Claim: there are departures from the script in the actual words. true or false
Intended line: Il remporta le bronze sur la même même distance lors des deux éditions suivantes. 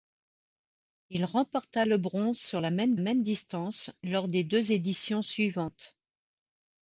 false